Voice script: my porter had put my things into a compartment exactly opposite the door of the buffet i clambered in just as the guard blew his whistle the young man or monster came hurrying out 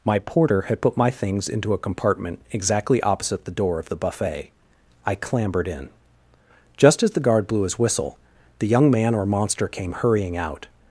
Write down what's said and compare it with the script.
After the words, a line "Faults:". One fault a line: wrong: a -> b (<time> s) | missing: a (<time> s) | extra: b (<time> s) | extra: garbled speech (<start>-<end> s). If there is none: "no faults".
my porter had put my things into a compartment exactly opposite the door of the buffet i clambered in just as the guard blew his whistle the young man or monster came hurrying out
Faults:
no faults